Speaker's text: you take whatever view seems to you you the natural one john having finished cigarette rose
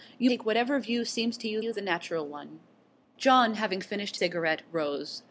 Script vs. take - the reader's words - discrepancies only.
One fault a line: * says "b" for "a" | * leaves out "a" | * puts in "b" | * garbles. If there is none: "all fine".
all fine